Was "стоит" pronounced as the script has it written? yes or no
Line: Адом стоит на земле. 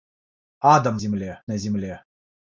no